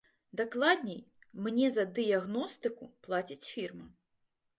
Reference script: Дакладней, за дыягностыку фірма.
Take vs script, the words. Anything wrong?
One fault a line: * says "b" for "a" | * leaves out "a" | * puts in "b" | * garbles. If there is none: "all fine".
* puts in "мне"
* puts in "плаціць"